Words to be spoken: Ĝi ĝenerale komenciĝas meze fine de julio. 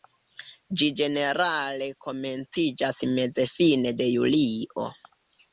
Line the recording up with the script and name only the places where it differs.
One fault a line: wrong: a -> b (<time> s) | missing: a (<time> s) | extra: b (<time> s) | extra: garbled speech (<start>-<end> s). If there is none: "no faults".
no faults